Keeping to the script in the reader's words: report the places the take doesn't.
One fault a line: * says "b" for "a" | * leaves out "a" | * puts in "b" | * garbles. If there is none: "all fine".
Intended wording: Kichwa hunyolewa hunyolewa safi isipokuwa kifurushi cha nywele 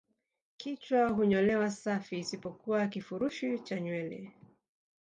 * leaves out "hunyolewa"